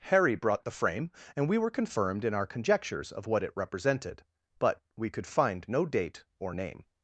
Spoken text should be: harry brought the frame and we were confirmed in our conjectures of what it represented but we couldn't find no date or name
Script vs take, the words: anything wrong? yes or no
yes